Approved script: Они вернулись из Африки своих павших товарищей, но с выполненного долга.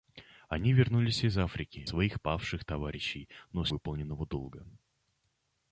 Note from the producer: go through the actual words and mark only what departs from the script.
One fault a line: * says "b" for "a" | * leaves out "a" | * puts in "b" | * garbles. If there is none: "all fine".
all fine